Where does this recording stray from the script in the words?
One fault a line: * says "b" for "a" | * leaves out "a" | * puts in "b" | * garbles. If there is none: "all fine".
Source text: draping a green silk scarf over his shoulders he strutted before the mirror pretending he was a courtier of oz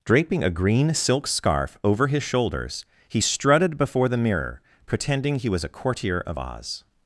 all fine